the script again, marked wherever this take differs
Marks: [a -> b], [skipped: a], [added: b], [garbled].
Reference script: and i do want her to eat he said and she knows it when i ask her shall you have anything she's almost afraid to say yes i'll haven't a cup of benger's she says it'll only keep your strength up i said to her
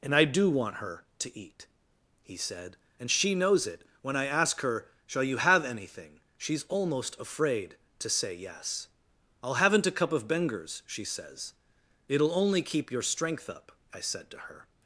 and i do want her to eat he said and she knows it when i ask her shall you have anything she's almost afraid to say yes i'll haven't a cup of benger's she says it'll only keep your strength up i said to her